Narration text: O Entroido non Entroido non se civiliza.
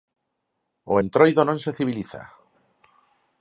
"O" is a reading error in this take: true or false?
false